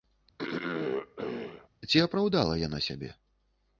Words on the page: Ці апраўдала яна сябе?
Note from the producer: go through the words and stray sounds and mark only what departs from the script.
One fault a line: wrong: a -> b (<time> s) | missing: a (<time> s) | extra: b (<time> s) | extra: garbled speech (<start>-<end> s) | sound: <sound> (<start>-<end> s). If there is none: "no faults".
sound: throat clearing (0.4-1.7 s)